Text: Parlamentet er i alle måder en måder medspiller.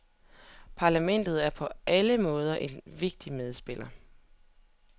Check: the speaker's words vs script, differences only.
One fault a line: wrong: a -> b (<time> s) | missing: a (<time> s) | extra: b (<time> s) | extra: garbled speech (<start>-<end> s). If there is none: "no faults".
wrong: i -> på (1.5 s)
wrong: måder -> vigtig (2.9 s)